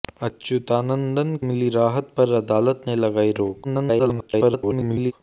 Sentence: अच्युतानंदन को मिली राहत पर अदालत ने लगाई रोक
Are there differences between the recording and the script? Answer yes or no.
yes